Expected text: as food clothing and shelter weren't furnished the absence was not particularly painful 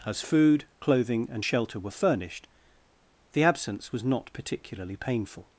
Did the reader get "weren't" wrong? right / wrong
wrong